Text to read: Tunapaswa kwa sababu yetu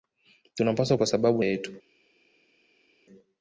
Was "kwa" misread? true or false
false